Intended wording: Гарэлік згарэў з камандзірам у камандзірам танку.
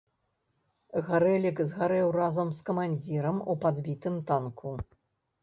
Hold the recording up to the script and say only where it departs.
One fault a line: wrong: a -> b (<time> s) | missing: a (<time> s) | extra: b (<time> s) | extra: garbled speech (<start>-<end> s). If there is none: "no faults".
extra: разам (2.2 s)
wrong: камандзірам -> падбітым (3.7 s)